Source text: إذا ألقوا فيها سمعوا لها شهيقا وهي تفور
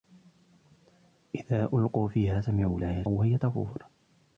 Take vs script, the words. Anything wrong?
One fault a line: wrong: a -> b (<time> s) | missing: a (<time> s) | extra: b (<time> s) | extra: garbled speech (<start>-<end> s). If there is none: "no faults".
missing: شهيقا (3.0 s)